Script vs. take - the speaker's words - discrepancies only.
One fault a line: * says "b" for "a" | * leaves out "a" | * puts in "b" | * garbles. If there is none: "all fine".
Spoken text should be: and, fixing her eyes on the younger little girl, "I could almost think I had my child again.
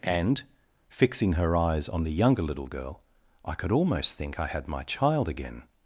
all fine